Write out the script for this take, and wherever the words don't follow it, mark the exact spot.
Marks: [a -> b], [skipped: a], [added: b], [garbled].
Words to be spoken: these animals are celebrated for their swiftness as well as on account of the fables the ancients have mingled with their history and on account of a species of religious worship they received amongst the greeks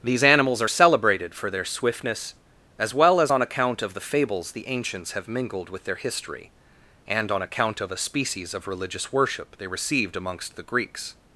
these animals are celebrated for their swiftness as well as on account of the fables the ancients have mingled with their history and on account of a species of religious worship they received amongst the greeks